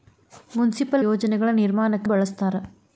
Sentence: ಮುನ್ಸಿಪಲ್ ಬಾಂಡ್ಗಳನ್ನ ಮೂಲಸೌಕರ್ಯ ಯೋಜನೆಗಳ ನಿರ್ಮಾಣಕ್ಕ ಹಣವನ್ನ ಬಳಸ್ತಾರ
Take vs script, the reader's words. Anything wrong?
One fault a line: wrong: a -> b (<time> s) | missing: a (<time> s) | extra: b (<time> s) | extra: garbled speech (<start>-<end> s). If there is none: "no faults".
missing: ಬಾಂಡ್ಗಳನ್ನ ಮೂಲಸೌಕರ್ಯ (1.1 s)
missing: ಹಣವನ್ನ (2.1 s)